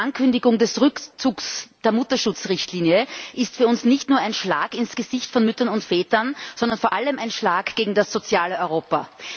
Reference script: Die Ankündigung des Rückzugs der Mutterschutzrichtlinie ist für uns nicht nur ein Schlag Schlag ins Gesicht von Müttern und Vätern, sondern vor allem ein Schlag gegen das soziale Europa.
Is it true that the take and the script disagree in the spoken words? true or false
true